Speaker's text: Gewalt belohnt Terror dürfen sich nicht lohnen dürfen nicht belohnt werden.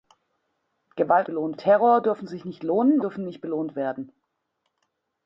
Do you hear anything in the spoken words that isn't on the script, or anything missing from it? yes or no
no